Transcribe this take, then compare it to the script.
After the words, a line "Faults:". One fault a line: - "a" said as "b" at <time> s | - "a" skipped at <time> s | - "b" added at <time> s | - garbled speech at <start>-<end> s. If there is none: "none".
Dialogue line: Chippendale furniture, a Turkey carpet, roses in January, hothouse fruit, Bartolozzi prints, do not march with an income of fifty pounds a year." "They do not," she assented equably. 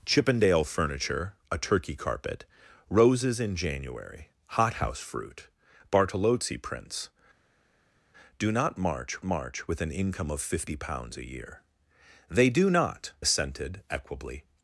Chippendale furniture, a Turkey carpet, roses in January, hothouse fruit, Bartolozzi prints, do not march march with an income of fifty pounds a year." "They do not," assented equably.
Faults:
- "march" added at 9.2 s
- "she" skipped at 13.1 s